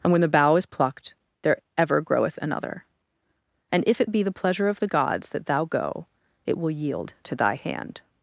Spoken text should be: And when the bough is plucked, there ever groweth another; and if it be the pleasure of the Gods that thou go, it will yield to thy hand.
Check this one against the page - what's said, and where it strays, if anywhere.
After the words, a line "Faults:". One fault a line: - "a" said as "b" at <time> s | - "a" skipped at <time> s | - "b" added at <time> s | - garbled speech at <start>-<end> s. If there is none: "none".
And when the bough is plucked, there ever groweth another; and if it be the pleasure of the Gods that thou go, it will yield to thy hand.
Faults:
none